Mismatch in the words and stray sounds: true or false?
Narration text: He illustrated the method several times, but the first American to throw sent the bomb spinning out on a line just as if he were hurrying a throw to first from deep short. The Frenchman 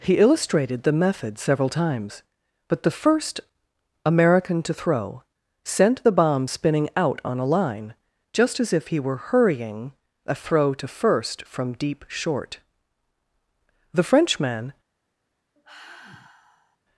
true